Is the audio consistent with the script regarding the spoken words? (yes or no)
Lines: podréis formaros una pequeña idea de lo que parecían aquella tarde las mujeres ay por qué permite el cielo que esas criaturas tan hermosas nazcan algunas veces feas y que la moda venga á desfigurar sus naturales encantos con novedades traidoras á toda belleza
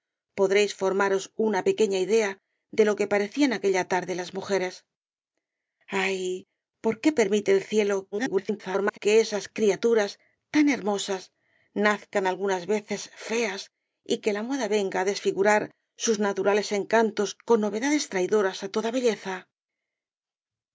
no